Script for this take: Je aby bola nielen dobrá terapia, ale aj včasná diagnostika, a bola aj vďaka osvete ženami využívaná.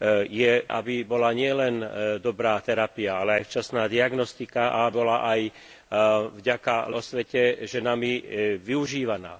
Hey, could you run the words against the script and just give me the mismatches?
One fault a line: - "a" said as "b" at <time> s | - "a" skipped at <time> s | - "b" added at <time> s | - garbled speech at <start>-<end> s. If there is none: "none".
none